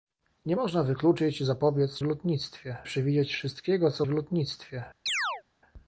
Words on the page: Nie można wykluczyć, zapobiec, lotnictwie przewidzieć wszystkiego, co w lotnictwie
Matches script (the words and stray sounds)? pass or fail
fail